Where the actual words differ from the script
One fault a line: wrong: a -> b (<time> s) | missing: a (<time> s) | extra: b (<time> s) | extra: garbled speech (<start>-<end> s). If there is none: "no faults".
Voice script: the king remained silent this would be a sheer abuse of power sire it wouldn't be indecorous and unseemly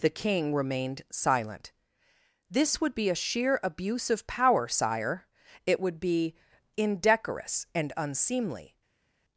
wrong: wouldn't -> would (5.8 s)